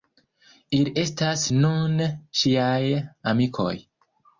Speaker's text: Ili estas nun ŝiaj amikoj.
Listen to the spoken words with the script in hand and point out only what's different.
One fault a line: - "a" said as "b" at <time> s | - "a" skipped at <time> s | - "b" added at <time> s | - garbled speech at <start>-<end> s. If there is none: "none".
none